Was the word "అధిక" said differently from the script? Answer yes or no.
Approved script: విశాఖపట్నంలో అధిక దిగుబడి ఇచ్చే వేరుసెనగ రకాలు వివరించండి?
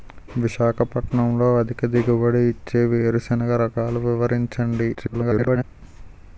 no